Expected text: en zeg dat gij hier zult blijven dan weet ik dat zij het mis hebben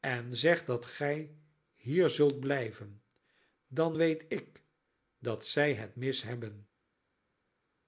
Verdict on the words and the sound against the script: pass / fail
pass